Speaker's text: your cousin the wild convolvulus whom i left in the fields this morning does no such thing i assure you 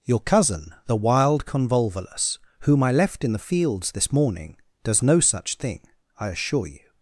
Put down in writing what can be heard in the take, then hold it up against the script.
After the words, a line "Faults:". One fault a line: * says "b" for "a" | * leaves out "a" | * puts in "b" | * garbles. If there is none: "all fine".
your cousin the wild convolvulus whom i left in the fields this morning does no such thing i assure you
Faults:
all fine